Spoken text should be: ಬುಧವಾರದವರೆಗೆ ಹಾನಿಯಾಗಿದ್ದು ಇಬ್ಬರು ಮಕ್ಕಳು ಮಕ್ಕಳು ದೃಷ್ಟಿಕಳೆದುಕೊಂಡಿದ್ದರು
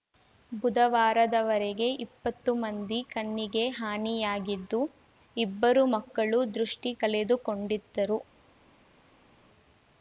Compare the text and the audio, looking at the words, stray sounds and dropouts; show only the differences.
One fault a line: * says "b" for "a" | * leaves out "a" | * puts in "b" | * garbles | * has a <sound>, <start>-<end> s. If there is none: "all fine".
* puts in "ಇಪ್ಪತ್ತು ಮಂದಿ ಕಣ್ಣಿಗೆ"
* leaves out "ಮಕ್ಕಳು"